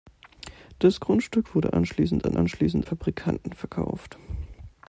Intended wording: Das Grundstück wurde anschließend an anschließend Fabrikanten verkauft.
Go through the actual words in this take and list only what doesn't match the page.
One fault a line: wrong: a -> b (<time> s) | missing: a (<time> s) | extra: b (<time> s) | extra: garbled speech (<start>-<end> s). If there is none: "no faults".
no faults